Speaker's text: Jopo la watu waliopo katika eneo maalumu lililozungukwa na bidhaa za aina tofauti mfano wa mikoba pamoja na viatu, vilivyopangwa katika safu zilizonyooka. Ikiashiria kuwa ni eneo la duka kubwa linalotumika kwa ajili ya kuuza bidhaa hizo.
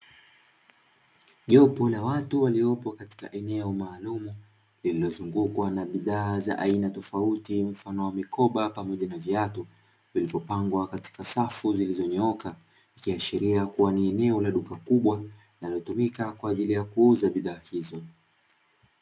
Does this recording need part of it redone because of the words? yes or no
no